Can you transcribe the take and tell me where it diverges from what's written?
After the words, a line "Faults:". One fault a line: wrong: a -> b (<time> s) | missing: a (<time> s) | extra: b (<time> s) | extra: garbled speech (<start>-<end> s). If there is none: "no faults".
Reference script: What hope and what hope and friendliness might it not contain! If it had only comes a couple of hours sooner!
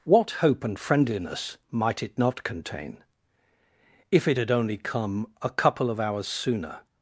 What hope and friendliness might it not contain! If it had only come a couple of hours sooner!
Faults:
missing: what hope and (0.8 s)
wrong: comes -> come (4.8 s)